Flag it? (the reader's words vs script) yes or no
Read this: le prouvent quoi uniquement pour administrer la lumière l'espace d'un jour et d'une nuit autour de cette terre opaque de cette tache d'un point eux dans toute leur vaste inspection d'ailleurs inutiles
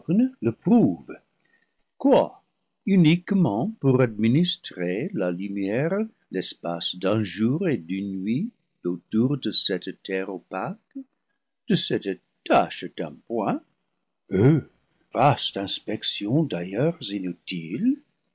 yes